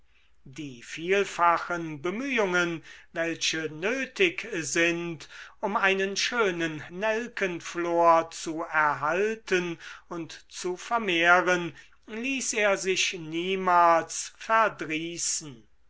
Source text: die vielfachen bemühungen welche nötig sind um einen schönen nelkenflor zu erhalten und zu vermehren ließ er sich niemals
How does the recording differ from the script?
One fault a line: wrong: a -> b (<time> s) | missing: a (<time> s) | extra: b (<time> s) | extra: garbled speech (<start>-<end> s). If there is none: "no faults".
no faults